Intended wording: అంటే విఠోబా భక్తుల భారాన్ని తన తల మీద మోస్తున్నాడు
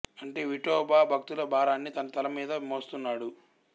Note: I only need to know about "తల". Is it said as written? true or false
true